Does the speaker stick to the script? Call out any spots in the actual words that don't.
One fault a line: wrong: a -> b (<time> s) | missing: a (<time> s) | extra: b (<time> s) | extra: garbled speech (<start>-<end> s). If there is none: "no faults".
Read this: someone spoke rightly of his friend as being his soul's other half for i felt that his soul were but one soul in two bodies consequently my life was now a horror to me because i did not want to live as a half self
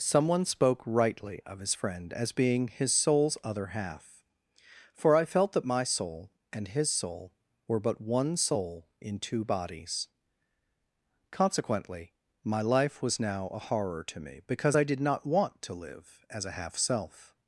extra: my soul and (5.6 s)